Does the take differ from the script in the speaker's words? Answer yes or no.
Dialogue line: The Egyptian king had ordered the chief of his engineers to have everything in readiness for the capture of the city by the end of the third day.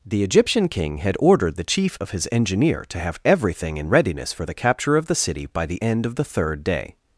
yes